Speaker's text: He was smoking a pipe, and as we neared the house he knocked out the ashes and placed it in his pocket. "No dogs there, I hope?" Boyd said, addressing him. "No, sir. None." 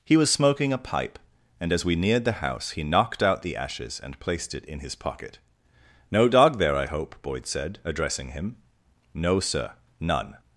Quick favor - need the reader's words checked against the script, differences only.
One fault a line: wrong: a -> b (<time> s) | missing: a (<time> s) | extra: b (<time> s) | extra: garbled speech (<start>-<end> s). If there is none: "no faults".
wrong: dogs -> dog (6.3 s)